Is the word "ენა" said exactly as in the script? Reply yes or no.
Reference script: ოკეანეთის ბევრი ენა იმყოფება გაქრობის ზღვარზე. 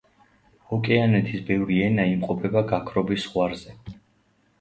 yes